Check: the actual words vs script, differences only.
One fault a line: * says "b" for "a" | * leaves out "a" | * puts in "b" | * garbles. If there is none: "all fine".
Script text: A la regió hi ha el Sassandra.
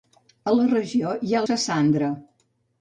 all fine